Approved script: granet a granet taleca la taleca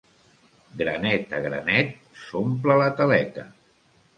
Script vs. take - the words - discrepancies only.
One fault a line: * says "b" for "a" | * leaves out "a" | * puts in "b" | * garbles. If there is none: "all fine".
* says "s'omple" for "taleca"